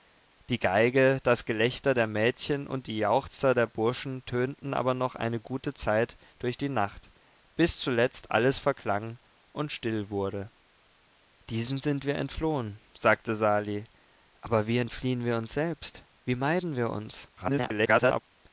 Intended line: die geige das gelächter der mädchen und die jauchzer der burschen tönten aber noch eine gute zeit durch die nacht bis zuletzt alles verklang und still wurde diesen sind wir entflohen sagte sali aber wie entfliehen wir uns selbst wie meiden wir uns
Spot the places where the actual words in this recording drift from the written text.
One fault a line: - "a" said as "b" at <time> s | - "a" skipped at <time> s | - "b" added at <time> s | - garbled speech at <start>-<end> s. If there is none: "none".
- garbled speech at 17.4-18.2 s